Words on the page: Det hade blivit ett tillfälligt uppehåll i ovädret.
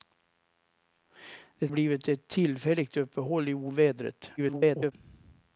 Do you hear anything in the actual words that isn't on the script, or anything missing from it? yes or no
yes